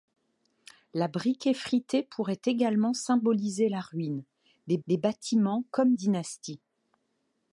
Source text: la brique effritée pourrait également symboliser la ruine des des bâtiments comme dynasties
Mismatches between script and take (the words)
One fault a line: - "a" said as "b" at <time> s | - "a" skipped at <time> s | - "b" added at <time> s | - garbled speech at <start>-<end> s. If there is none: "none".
none